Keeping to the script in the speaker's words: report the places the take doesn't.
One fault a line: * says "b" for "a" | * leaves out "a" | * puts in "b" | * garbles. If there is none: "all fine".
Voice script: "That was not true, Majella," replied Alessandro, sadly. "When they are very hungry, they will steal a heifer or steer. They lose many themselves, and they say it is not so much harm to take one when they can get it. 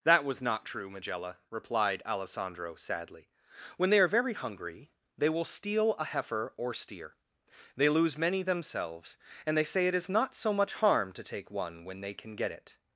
all fine